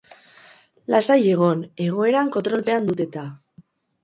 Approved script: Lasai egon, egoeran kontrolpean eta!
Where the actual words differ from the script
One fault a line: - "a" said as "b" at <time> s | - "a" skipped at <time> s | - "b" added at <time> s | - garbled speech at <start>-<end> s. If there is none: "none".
- "dut" added at 2.9 s